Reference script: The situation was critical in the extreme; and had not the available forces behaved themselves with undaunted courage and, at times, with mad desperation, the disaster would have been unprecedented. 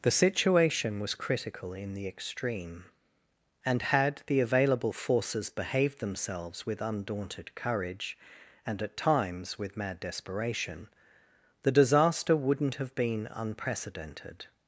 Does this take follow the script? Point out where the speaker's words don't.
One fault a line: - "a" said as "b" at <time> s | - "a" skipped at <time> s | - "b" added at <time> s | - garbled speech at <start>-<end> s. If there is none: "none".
- "not" skipped at 4.2 s
- "would" said as "wouldn't" at 12.4 s